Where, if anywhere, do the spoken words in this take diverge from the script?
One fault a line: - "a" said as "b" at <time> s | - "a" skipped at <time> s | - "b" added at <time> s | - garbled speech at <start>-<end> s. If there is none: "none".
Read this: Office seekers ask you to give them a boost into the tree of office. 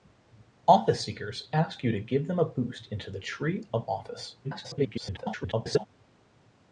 - garbled speech at 4.4-5.9 s